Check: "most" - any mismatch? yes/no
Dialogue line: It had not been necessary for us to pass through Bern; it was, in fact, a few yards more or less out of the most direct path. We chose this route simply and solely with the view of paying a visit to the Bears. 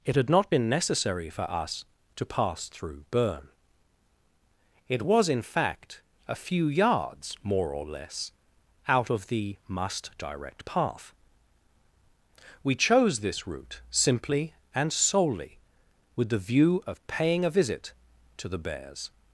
yes